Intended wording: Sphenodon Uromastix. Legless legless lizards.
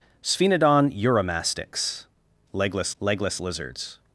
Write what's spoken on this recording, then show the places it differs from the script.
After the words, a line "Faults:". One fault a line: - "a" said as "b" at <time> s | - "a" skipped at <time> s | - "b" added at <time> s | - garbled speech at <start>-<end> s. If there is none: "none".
Sphenodon Uromastix. Legless legless lizards.
Faults:
none